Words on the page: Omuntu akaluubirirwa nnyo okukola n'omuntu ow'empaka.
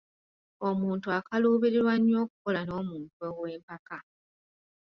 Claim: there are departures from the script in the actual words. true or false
false